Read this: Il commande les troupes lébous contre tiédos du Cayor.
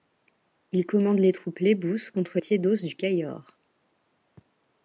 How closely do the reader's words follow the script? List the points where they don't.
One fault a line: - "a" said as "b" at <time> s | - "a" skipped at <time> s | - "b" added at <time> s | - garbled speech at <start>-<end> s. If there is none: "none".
none